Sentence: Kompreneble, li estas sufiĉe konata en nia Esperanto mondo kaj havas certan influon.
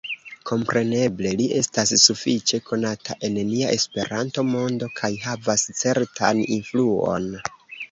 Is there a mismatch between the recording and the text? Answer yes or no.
no